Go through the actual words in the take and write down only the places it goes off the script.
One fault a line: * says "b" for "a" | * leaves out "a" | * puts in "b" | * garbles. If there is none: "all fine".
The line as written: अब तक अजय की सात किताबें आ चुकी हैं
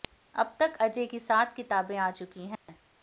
all fine